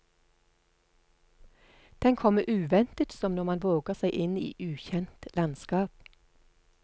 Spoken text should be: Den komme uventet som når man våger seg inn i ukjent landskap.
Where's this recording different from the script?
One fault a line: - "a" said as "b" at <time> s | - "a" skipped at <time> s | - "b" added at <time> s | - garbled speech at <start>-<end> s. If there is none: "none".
none